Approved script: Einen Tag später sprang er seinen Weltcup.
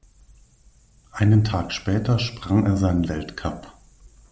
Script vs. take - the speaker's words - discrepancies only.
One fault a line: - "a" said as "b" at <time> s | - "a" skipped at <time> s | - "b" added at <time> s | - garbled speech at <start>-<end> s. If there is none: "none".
none